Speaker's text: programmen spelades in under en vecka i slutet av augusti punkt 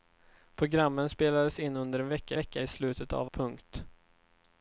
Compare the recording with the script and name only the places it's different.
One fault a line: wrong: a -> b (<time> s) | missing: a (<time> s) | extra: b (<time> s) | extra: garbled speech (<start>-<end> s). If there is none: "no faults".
extra: vecka (2.3 s)
missing: augusti (3.3 s)